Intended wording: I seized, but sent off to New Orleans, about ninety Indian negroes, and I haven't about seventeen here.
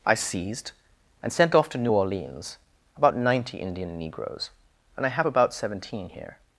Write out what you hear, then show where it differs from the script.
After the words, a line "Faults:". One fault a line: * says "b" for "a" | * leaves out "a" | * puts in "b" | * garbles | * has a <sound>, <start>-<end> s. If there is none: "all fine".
I seized, and sent off to New Orleans, about ninety Indian negroes, and I have about seventeen here.
Faults:
* says "and" for "but"
* says "have" for "haven't"